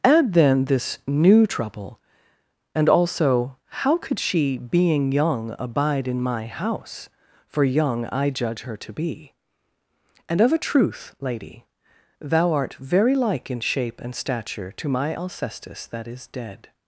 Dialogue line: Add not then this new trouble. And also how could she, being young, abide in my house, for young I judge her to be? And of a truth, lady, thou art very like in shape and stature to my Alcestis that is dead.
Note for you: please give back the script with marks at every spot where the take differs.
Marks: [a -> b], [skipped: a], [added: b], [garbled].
Add [skipped: not] then this new trouble. And also how could she, being young, abide in my house, for young I judge her to be? And of a truth, lady, thou art very like in shape and stature to my Alcestis that is dead.